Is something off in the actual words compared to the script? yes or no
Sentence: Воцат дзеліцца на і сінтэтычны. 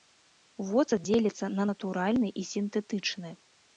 yes